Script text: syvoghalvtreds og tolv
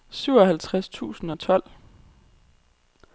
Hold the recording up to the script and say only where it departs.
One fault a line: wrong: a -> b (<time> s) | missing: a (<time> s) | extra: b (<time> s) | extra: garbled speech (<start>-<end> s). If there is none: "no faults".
extra: tusind (0.9 s)